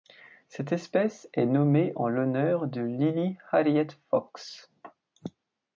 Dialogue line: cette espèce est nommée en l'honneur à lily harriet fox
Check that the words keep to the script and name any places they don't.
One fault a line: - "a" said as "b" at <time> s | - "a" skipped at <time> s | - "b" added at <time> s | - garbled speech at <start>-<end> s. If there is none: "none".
- "à" said as "de" at 2.7 s